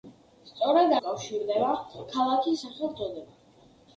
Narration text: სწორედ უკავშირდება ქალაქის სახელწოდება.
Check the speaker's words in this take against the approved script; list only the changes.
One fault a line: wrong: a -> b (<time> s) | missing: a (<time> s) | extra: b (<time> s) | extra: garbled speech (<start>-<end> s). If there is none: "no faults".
no faults